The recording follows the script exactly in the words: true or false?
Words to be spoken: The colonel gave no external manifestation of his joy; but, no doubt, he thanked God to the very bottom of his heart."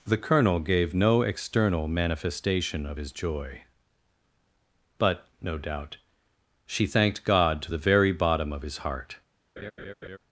false